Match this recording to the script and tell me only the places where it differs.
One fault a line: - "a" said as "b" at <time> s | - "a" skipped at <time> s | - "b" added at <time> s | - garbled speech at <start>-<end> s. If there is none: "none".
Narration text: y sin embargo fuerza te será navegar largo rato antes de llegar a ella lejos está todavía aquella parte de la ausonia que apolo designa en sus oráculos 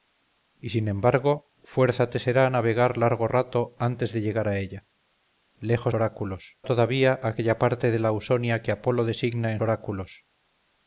- "está" said as "oráculos" at 5.9 s
- "sus" skipped at 9.6 s